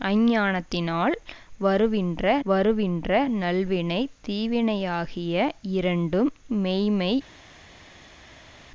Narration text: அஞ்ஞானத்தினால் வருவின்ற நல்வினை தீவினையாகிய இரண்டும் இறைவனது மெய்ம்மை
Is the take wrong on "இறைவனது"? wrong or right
wrong